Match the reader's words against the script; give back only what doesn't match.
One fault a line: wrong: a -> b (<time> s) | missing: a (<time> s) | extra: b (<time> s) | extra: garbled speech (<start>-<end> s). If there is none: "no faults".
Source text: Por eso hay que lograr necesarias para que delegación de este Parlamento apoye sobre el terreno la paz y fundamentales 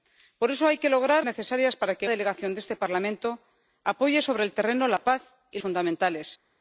no faults